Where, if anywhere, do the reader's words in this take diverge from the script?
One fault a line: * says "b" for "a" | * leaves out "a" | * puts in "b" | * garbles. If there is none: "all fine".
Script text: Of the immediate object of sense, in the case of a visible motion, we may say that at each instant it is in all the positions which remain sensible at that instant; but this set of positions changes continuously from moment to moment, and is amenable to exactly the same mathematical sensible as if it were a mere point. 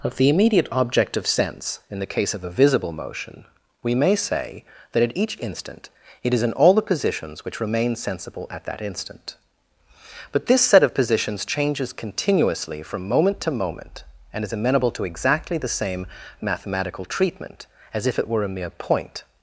* says "treatment" for "sensible"